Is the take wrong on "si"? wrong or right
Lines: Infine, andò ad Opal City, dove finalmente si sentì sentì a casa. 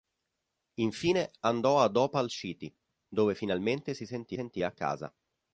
right